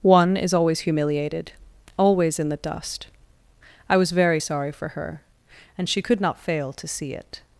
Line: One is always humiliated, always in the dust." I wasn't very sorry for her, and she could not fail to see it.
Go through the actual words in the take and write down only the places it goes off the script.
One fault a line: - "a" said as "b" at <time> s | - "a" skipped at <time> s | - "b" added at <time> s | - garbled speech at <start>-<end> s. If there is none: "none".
- "wasn't" said as "was" at 4.0 s